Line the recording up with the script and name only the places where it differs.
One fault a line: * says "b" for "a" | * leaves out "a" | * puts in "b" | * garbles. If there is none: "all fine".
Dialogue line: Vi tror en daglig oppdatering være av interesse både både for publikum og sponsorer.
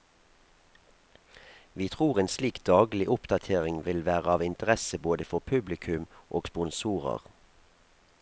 * puts in "slik"
* puts in "vil"
* leaves out "både"